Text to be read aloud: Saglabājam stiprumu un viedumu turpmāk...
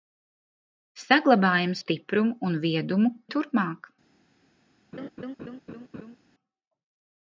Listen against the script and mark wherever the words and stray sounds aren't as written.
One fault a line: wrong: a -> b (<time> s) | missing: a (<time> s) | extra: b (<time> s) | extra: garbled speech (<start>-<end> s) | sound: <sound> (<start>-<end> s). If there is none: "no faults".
sound: laugh (4.9-6.2 s)